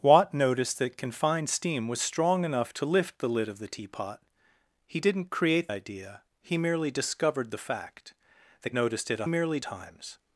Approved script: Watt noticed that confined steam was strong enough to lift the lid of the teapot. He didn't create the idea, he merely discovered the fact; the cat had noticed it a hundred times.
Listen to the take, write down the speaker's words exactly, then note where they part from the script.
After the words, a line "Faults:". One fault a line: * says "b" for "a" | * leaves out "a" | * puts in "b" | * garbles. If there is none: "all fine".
Watt noticed that confined steam was strong enough to lift the lid of the teapot. He didn't create idea, he merely discovered the fact; the noticed it a merely times.
Faults:
* leaves out "the"
* leaves out "cat had"
* says "merely" for "hundred"